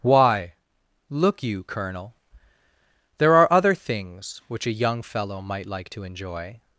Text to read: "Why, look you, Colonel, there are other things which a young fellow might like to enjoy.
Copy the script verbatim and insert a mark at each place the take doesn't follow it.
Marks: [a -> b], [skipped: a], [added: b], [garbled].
"Why, look you, Colonel, there are other things which a young fellow might like to enjoy.